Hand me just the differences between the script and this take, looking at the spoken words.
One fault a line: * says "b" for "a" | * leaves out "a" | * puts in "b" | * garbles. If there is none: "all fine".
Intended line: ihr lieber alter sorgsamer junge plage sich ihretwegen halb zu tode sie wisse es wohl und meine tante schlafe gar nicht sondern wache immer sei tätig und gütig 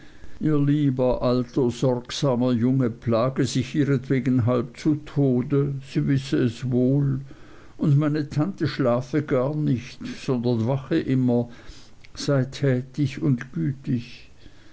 all fine